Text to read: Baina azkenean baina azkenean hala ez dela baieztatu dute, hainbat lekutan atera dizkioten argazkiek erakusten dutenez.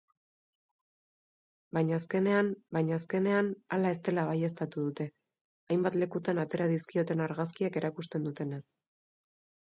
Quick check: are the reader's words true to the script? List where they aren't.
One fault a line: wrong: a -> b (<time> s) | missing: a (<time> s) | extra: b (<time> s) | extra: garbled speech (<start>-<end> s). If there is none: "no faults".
no faults